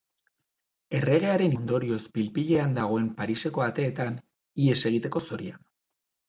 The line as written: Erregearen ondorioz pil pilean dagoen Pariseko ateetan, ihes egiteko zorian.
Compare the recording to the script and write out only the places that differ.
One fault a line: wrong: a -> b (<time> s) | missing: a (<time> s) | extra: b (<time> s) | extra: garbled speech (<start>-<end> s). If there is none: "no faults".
no faults